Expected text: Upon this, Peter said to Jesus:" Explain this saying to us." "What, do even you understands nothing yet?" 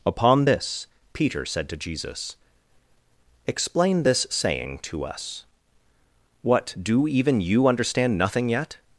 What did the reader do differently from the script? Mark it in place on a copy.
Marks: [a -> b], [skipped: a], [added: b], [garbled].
Upon this, Peter said to Jesus:" Explain this saying to us." "What, do even you [understands -> understand] nothing yet?"